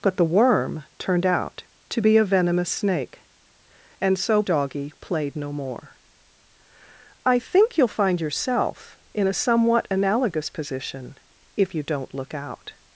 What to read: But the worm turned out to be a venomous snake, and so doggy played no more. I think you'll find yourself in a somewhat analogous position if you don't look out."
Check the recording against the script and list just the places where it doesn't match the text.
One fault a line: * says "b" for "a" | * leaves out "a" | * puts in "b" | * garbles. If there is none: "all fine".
all fine